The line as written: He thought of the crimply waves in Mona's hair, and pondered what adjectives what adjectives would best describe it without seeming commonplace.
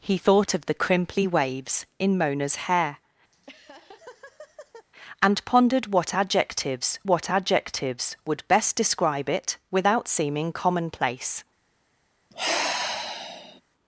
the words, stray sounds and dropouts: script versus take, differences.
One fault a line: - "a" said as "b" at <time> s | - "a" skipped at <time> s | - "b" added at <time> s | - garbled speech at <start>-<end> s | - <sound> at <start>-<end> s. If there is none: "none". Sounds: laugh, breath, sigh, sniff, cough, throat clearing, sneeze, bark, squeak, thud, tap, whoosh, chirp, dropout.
- laugh at 3.3-4.9 s
- sigh at 12.3-13.6 s